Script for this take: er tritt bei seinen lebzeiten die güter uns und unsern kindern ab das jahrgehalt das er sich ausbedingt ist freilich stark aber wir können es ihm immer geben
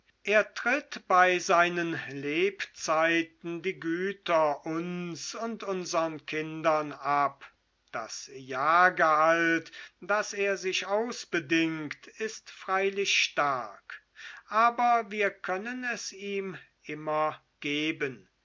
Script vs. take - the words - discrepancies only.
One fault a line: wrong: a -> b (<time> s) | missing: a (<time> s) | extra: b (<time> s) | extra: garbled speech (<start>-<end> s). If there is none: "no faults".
no faults